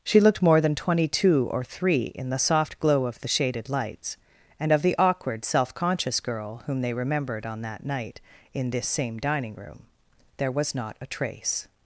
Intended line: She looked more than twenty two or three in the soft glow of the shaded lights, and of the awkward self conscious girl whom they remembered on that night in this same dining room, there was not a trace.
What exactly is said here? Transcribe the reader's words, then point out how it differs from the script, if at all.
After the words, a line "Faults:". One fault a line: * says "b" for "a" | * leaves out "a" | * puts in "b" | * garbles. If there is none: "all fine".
She looked more than twenty two or three in the soft glow of the shaded lights, and of the awkward self conscious girl whom they remembered on that night in this same dining room, there was not a trace.
Faults:
all fine